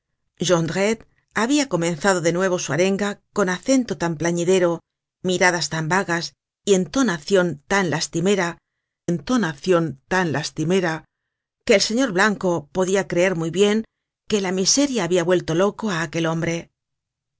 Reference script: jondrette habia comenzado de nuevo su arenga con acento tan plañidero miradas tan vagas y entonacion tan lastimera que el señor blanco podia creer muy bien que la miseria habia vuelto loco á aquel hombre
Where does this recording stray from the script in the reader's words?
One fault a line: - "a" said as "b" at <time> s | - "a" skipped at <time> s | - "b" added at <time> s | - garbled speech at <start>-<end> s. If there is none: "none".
- "entonacion tan lastimera" added at 9.1 s